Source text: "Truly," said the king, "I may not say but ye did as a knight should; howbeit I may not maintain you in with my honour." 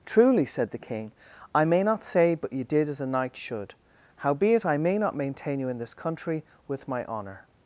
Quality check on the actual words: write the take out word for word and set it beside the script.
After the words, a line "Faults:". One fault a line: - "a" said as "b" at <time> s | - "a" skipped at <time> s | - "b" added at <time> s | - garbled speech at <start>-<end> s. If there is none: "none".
"Truly," said the king, "I may not say but ye did as a knight should; howbeit I may not maintain you in this country with my honour."
Faults:
- "this country" added at 5.8 s